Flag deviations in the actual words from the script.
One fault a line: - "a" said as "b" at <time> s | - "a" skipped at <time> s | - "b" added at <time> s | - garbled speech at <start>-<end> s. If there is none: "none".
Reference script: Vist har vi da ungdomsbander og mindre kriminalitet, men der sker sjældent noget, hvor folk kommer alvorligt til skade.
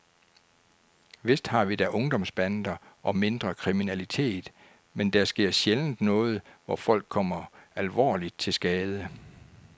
none